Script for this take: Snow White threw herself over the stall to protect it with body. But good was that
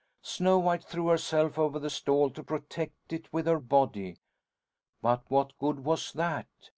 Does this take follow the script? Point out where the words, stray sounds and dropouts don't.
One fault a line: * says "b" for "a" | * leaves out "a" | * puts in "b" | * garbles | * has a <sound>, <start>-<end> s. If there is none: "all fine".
* puts in "her"
* puts in "what"